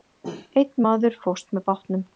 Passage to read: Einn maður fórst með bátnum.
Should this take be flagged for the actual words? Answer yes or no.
no